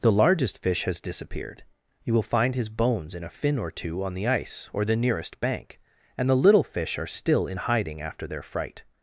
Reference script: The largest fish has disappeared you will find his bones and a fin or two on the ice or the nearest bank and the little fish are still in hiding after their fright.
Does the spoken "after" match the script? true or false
true